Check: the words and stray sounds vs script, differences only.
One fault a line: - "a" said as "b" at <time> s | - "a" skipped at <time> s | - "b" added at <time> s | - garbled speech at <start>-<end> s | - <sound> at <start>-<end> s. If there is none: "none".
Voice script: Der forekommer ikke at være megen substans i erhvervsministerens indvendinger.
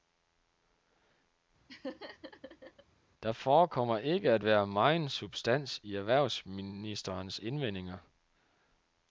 - laugh at 1.7-2.8 s